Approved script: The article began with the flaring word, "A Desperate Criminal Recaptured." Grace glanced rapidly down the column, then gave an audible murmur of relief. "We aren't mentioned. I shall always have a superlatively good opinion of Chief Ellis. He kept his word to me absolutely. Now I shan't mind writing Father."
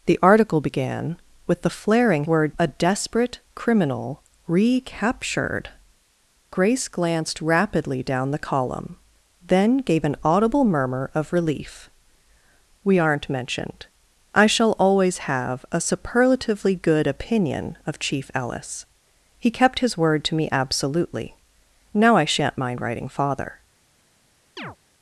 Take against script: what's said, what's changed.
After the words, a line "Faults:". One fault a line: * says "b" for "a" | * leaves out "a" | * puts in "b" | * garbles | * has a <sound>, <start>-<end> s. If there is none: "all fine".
The article began with the flaring word, "A Desperate Criminal Recaptured." Grace glanced rapidly down the column, then gave an audible murmur of relief. "We aren't mentioned. I shall always have a superlatively good opinion of Chief Ellis. He kept his word to me absolutely. Now I shan't mind writing Father."
Faults:
* has a chirp, 24.6-24.8 s